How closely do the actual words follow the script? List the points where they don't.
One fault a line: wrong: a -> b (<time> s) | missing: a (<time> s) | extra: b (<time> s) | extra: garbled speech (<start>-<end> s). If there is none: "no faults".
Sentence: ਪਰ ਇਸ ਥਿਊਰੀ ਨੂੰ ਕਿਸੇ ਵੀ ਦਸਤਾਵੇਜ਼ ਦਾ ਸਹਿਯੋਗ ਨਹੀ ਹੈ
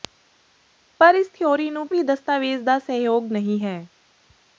missing: ਕਿਸੇ (1.9 s)